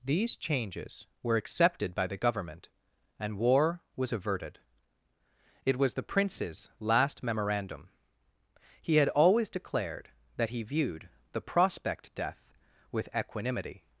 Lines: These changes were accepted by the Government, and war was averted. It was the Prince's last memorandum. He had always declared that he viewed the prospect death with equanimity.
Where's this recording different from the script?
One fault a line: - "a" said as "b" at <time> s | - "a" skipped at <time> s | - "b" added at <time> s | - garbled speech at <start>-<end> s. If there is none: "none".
none